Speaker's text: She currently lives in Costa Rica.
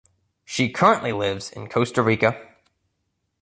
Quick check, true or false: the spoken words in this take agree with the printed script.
true